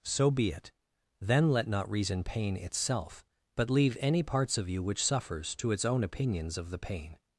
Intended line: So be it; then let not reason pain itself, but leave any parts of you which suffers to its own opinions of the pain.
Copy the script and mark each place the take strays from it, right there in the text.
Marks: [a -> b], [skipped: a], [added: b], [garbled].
So be it; then let not reason pain itself, but leave any parts of you which suffers to its own opinions of the pain.